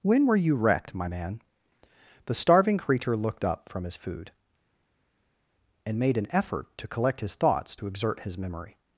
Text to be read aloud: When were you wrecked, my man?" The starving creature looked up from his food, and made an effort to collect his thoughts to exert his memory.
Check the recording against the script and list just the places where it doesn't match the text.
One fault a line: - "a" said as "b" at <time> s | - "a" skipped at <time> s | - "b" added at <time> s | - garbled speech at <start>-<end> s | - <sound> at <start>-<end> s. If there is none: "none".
none